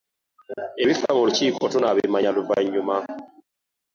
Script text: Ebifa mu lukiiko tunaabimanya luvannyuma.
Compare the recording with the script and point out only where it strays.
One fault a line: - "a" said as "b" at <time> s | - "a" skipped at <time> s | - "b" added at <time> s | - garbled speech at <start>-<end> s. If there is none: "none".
none